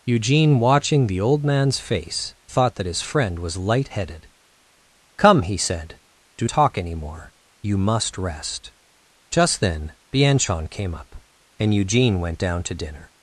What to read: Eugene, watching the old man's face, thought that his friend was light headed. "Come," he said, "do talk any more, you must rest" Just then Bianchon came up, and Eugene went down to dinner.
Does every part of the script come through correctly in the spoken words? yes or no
yes